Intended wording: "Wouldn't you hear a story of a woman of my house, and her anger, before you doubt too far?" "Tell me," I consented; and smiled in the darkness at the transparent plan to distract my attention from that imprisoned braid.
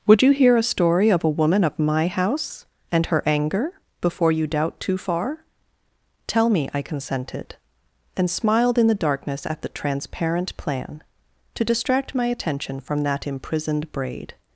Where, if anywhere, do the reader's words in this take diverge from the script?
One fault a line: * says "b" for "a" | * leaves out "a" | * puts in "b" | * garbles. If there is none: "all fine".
* says "Would" for "Wouldn't"